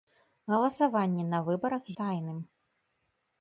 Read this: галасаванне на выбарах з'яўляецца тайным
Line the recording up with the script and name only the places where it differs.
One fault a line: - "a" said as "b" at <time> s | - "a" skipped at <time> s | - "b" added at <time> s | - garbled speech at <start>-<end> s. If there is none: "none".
- "з'яўляецца" skipped at 1.8 s